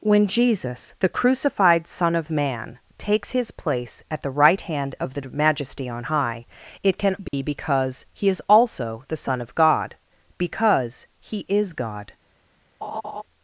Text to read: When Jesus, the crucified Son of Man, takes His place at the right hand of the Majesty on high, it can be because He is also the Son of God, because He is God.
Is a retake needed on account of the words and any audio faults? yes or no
yes